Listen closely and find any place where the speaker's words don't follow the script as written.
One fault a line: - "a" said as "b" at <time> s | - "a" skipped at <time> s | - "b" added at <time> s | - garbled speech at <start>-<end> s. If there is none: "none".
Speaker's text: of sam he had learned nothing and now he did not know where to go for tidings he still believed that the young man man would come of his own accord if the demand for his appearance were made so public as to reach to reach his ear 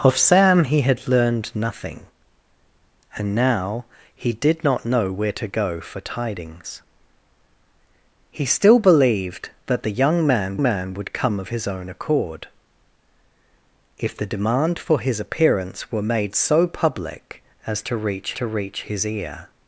none